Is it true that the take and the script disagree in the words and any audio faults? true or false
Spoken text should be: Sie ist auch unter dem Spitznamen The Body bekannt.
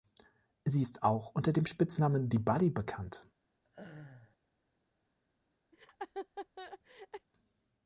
true